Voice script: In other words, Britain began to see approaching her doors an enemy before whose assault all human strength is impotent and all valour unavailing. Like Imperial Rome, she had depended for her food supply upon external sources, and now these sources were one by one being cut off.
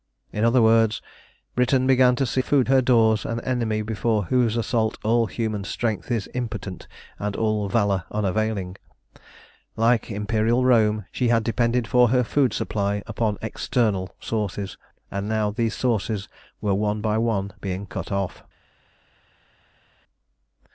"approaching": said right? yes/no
no